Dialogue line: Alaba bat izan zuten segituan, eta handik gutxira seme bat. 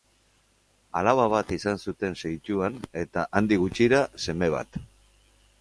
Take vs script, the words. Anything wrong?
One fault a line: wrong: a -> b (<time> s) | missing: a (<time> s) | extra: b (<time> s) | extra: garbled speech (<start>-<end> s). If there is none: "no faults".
no faults